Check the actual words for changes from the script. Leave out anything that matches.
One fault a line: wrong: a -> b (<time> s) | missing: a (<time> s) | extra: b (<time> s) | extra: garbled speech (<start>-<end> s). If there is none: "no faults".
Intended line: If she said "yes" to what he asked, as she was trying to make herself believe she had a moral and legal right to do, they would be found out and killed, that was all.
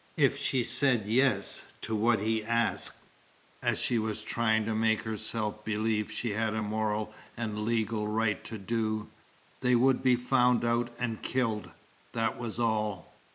no faults